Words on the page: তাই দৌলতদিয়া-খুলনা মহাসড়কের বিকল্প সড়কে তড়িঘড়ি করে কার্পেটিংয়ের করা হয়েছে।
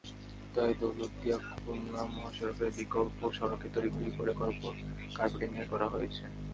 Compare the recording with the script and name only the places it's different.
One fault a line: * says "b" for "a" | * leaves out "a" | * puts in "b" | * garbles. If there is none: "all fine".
all fine